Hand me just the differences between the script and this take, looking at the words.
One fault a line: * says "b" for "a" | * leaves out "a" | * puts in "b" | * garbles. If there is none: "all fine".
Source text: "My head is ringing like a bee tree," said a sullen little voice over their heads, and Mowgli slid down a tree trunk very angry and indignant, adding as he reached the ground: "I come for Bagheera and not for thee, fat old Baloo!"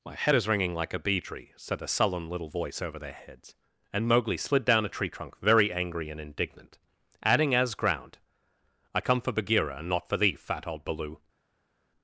* leaves out "he reached the"